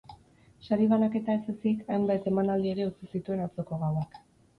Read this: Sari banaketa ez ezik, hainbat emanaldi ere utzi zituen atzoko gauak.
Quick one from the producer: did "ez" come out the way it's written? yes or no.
yes